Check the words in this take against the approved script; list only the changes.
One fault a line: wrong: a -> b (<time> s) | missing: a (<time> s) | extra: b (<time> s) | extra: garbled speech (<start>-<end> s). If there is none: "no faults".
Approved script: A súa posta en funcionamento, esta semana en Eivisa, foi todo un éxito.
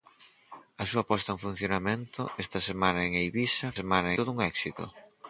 wrong: foi -> semana (3.8 s)